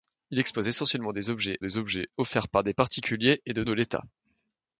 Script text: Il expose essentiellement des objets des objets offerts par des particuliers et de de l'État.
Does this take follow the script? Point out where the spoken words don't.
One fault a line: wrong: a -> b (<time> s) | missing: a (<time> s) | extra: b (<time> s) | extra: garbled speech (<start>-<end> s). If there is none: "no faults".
no faults